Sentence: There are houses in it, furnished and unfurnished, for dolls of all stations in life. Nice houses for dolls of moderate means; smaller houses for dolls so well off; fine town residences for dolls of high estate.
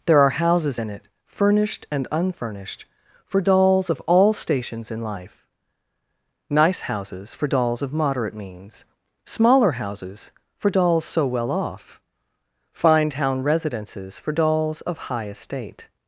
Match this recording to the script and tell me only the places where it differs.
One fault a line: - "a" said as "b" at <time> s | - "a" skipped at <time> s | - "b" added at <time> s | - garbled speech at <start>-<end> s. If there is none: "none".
none